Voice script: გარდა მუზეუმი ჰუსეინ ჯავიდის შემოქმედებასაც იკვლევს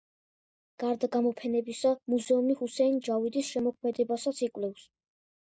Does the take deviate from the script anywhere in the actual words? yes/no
yes